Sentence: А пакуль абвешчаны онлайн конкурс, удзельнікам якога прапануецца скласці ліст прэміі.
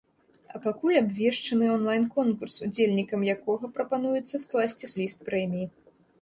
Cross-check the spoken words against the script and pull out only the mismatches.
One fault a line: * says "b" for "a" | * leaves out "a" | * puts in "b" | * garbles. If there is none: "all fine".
all fine